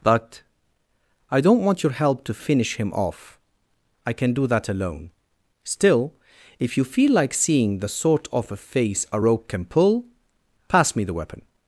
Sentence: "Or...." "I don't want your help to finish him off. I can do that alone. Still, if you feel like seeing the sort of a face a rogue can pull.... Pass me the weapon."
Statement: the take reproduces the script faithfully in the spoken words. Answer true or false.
false